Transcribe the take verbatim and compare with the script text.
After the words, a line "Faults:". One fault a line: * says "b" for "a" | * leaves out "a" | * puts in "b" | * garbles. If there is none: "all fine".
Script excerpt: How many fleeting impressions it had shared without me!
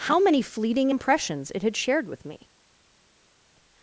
How many fleeting impressions it had shared with me!
Faults:
* says "with" for "without"